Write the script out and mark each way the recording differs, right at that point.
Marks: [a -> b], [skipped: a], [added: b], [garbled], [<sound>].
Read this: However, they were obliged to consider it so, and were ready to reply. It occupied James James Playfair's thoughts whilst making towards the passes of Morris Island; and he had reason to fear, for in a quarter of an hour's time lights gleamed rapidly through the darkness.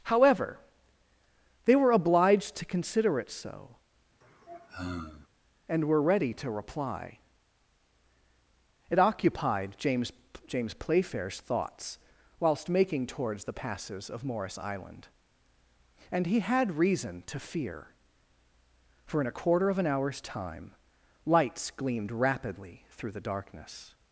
However, they were obliged to consider it so, [sigh] and were ready to reply. It occupied James James Playfair's thoughts whilst making towards the passes of Morris Island; and he had reason to fear, for in a quarter of an hour's time lights gleamed rapidly through the darkness.